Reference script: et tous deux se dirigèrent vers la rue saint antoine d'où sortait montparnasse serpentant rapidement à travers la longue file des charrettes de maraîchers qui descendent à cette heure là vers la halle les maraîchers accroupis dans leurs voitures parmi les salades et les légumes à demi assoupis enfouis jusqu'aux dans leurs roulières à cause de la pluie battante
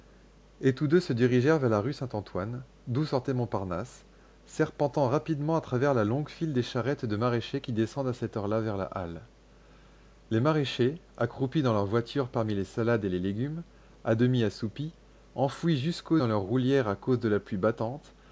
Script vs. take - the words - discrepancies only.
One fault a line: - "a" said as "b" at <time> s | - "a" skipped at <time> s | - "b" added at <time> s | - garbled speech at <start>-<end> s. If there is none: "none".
none